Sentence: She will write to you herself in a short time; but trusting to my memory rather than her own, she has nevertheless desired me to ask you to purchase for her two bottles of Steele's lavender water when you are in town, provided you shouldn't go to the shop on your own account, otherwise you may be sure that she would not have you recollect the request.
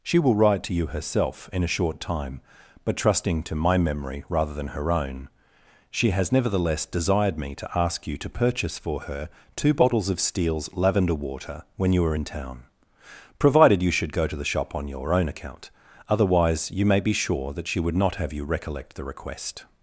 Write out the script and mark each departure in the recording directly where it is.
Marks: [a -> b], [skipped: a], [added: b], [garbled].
She will write to you herself in a short time; but trusting to my memory rather than her own, she has nevertheless desired me to ask you to purchase for her two bottles of Steele's lavender water when you are in town, provided you [shouldn't -> should] go to the shop on your own account, otherwise you may be sure that she would not have you recollect the request.